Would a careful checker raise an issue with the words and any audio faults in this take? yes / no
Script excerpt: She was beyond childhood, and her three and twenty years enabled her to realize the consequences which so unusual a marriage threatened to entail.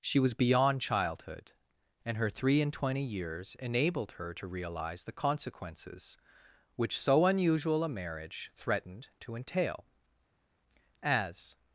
yes